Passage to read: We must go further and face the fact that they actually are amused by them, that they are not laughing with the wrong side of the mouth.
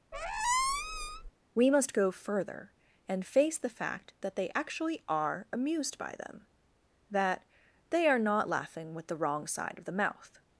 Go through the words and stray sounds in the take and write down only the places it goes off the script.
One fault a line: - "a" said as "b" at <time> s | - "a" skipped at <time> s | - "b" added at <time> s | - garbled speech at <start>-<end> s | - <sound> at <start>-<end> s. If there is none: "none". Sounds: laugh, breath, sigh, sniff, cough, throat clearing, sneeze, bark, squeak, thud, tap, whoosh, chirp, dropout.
- squeak at 0.1-1.3 s